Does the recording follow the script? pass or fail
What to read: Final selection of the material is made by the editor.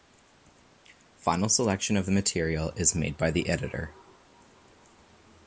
pass